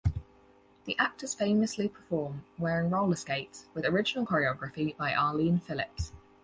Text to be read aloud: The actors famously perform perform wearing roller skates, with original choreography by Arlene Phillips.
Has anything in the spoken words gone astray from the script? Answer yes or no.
yes